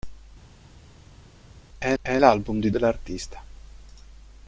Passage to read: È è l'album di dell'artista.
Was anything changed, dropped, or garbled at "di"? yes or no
no